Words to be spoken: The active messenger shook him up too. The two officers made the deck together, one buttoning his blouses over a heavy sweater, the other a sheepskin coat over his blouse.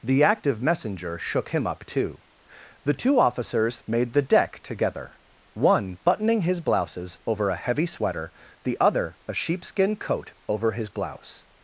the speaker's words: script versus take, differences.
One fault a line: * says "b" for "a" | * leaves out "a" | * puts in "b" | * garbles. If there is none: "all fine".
all fine